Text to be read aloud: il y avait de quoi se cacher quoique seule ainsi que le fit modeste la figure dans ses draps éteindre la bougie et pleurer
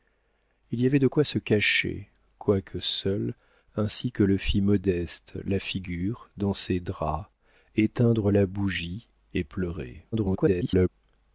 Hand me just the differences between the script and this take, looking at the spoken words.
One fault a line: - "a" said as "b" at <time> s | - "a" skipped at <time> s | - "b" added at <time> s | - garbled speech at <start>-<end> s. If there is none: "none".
- garbled speech at 10.1-10.9 s